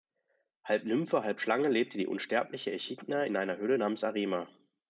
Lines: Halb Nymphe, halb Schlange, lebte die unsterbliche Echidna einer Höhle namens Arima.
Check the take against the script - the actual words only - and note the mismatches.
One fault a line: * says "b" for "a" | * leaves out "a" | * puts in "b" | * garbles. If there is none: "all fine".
* puts in "in"